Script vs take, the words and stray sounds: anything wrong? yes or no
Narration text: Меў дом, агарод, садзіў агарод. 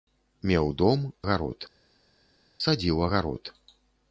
no